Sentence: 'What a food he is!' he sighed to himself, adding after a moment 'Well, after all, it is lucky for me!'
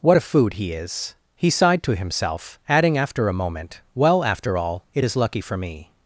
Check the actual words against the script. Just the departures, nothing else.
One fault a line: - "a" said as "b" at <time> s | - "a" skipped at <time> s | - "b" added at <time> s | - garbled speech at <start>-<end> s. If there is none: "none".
none